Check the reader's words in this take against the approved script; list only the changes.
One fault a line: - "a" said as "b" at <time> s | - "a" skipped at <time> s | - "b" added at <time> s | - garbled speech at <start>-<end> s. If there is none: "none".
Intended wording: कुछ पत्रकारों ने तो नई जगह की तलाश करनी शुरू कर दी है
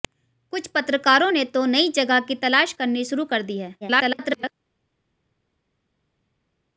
- garbled speech at 3.8-4.5 s